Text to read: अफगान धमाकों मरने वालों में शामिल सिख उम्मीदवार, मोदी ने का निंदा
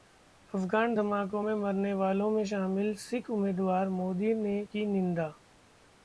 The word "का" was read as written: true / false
false